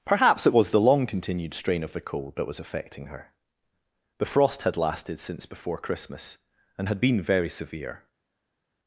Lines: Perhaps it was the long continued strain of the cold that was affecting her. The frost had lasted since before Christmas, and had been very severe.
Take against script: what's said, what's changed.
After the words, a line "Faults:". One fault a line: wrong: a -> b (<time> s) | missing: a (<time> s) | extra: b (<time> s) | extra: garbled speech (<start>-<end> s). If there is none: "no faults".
Perhaps it was the long continued strain of the cold that was affecting her. The frost had lasted since before Christmas, and had been very severe.
Faults:
no faults